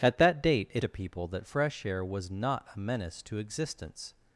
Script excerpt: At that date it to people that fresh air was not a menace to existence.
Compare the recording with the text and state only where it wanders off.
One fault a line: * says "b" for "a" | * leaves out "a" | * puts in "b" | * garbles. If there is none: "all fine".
all fine